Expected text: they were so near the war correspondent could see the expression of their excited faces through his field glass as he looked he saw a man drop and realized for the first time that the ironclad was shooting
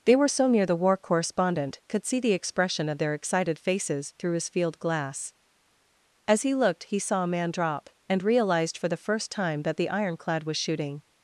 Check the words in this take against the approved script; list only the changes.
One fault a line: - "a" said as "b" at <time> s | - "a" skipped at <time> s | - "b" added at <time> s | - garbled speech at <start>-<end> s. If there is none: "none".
none